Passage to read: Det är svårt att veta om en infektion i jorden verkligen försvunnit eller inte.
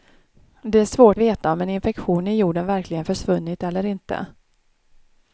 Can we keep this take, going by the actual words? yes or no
no